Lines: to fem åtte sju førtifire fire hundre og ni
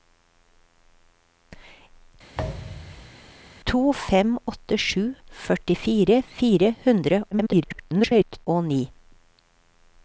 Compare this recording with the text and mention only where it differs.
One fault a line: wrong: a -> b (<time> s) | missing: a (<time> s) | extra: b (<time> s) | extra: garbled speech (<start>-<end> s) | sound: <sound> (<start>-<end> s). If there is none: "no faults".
sound: thud (2.3-3.2 s)
extra: garbled speech (7.3-8.5 s)